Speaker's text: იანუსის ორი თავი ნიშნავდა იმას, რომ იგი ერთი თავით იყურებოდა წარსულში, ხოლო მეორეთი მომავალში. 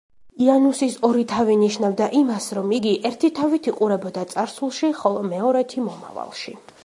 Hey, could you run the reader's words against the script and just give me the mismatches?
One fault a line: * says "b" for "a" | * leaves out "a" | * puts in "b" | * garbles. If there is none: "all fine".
all fine